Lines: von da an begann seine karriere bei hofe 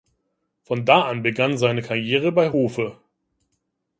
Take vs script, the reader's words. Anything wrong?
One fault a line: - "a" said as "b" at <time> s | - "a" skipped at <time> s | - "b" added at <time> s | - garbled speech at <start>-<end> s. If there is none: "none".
none